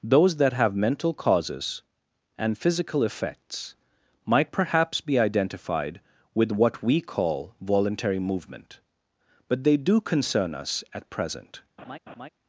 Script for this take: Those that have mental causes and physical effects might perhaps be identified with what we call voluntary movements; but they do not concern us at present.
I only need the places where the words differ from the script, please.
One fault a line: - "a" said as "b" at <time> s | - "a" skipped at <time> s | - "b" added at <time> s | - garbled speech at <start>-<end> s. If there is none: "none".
- "movements" said as "movement" at 8.2 s
- "not" skipped at 10.0 s